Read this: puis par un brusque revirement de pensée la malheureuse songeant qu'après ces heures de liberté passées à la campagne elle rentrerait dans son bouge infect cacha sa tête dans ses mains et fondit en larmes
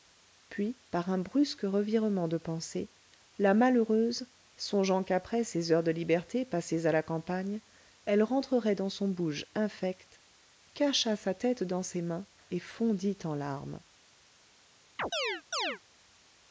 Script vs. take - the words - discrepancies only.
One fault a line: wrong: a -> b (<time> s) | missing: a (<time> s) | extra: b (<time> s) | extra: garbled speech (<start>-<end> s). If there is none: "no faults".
no faults